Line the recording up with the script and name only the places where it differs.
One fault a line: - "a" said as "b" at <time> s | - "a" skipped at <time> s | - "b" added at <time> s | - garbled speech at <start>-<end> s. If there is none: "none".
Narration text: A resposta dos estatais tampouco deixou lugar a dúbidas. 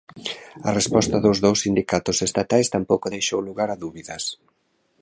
- "dous sindicatos" added at 1.4 s